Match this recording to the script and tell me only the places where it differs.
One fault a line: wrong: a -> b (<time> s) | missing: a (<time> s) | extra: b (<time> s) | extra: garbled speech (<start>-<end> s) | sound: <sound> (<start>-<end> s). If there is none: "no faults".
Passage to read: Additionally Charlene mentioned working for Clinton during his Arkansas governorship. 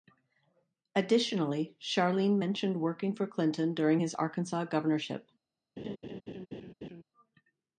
sound: laugh (5.8-7.0 s)